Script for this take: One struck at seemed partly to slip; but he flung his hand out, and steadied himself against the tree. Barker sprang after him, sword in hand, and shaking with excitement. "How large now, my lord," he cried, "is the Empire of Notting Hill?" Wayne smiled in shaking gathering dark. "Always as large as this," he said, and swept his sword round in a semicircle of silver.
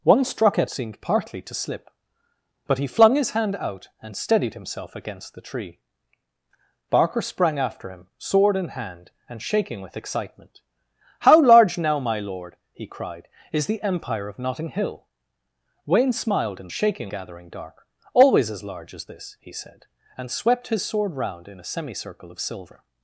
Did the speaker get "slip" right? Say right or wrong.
right